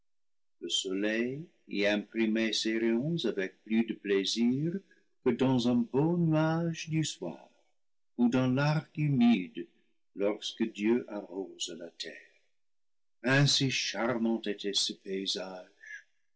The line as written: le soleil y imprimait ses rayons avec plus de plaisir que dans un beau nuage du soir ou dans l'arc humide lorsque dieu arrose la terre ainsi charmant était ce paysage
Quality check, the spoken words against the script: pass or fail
pass